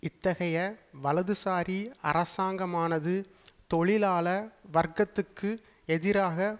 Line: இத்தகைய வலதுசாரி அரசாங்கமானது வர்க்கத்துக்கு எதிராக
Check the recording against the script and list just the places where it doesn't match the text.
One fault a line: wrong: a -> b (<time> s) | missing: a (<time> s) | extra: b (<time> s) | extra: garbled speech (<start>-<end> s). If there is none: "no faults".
extra: தொழிலாள (3.7 s)